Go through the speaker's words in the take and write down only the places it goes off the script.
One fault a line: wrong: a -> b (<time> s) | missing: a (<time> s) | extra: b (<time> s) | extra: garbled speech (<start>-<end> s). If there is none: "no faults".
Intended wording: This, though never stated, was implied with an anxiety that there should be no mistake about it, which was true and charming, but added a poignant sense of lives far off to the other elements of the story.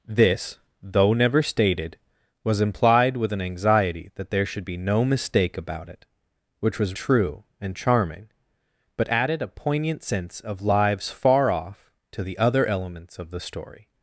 no faults